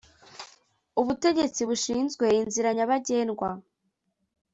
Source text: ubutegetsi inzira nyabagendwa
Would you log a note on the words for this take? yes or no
yes